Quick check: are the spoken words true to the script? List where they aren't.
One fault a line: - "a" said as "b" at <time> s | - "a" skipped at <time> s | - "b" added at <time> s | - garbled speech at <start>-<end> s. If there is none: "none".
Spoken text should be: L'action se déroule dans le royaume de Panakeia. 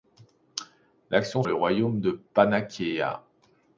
- "se déroule dans" skipped at 1.4 s